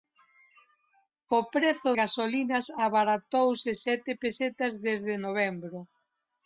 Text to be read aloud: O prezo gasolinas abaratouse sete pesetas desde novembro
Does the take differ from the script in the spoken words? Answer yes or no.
no